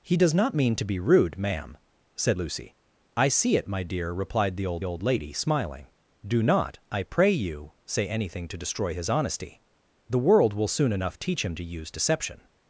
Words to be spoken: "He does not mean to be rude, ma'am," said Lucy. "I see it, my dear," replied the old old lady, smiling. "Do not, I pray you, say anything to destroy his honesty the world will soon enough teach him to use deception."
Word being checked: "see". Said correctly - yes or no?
yes